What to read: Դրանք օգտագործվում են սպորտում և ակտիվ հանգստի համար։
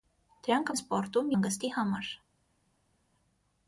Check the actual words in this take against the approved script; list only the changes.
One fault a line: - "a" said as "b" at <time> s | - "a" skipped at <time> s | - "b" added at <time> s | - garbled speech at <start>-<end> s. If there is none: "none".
- "օգտագործվում" skipped at 0.7 s
- "և ակտիվ" skipped at 1.3 s